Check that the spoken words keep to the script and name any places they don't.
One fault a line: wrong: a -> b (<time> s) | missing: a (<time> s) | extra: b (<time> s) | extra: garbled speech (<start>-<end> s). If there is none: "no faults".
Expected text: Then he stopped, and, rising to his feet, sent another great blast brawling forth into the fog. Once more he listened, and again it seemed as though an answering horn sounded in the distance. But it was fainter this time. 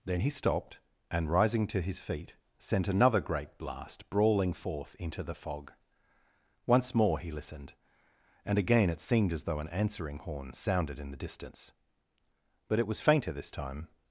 no faults